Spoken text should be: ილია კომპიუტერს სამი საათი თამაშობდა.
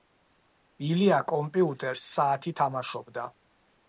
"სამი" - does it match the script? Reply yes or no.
no